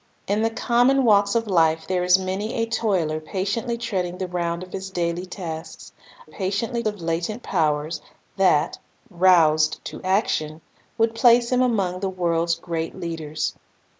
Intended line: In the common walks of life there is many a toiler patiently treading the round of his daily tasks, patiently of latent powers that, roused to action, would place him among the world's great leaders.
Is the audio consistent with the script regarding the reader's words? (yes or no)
yes